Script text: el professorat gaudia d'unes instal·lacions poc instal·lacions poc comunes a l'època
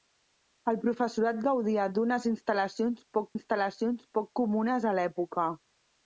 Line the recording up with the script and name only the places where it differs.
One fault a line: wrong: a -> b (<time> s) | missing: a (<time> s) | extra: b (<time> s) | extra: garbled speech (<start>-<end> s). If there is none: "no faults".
no faults